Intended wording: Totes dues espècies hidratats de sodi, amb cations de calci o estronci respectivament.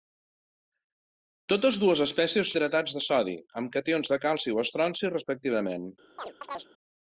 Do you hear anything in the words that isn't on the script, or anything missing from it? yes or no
no